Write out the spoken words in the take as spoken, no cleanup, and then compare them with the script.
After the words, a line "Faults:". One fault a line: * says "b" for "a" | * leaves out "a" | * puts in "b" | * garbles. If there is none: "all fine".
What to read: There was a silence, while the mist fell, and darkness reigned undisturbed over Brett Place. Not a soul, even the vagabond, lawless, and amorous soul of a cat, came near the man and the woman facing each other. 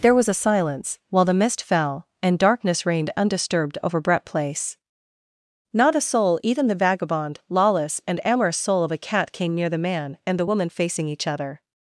There was a silence, while the mist fell, and darkness reigned undisturbed over Brett Place. Not a soul, even the vagabond, lawless, and amorous soul of a cat, came near the man and the woman facing each other.
Faults:
all fine